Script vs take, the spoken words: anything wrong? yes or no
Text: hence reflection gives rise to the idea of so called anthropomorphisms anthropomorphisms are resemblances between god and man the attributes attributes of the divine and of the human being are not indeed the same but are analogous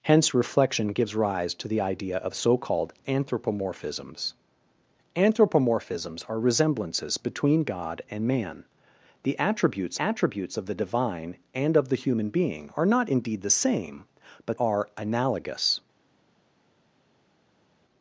no